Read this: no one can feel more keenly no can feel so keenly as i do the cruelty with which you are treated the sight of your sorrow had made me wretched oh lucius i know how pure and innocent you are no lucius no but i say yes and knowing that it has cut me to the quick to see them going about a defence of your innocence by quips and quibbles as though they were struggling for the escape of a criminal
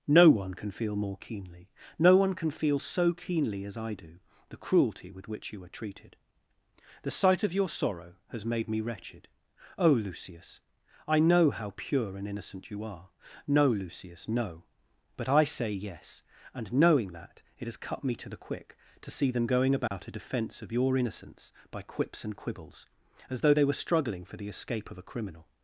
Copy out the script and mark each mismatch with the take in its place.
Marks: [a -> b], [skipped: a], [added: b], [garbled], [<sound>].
no one can feel more keenly no [added: one] can feel so keenly as i do the cruelty with which you are treated the sight of your sorrow [had -> has] made me wretched oh lucius i know how pure and innocent you are no lucius no but i say yes and knowing that it has cut me to the quick to see them going about [dropout] a defence of your innocence by quips and quibbles as though they were struggling for the escape of a criminal